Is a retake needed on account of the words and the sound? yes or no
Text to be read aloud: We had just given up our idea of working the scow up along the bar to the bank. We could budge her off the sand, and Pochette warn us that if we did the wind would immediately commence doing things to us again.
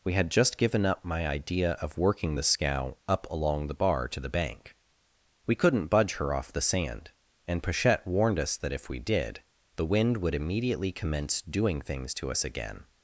yes